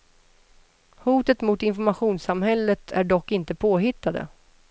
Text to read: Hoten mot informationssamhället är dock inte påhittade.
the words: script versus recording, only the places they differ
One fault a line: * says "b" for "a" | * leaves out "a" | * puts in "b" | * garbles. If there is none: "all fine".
all fine